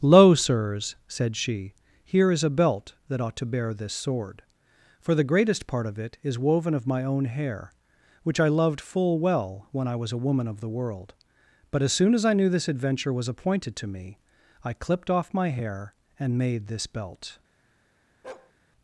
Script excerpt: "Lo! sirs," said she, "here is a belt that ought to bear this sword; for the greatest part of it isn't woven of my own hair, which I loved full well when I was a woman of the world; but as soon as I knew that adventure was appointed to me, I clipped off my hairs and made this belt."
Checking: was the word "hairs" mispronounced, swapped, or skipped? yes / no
yes